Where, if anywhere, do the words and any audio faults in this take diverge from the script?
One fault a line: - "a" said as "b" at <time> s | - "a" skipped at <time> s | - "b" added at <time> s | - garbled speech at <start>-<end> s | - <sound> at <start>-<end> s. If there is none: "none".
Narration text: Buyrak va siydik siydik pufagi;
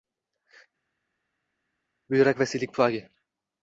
- "siydik" skipped at 2.8 s